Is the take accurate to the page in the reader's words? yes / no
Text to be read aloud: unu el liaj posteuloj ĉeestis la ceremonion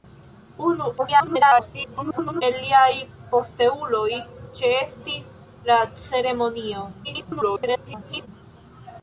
no